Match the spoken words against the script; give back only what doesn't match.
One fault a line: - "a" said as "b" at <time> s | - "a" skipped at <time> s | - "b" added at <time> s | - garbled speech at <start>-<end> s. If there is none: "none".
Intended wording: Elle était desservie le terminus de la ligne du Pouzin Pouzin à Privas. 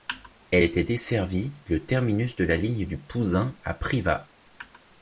- "Pouzin" skipped at 3.6 s